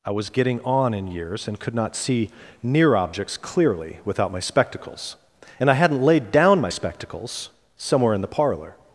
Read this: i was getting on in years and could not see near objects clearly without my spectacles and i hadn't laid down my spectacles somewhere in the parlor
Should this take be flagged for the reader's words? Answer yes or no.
no